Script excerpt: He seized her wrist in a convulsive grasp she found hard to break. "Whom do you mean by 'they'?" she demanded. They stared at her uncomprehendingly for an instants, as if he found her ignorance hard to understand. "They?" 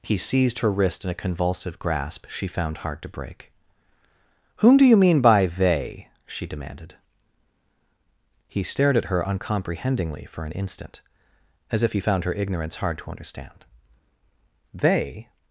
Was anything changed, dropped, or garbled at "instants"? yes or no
yes